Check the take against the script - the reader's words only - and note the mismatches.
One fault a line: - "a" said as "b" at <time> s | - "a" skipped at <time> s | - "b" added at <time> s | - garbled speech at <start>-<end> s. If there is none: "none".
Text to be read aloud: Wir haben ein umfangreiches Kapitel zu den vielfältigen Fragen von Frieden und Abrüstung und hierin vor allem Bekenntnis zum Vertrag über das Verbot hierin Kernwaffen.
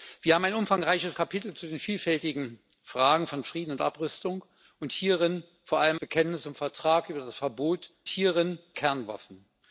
none